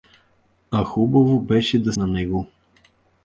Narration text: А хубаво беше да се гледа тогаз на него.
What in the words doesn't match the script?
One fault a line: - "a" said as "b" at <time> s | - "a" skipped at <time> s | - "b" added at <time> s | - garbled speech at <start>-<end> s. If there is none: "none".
- "се гледа тогаз" skipped at 1.9 s